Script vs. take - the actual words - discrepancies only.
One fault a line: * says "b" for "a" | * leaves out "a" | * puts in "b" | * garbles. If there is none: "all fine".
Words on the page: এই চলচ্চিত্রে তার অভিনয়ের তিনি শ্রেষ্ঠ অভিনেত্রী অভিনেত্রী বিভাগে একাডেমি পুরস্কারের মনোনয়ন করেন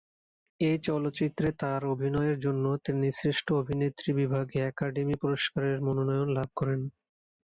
* puts in "জন্য"
* leaves out "অভিনেত্রী"
* puts in "লাভ"